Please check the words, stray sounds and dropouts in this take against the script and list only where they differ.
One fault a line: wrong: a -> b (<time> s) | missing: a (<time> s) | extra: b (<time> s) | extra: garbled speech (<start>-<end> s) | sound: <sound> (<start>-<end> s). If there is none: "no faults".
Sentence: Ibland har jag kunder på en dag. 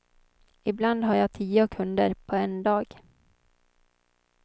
extra: tio (1.3 s)